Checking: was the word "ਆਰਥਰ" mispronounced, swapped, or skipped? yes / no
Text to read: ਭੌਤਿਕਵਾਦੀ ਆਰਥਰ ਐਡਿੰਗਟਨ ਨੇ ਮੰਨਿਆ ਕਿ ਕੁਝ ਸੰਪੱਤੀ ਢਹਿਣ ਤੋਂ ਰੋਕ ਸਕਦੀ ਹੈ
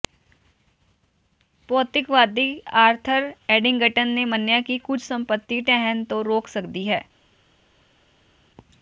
no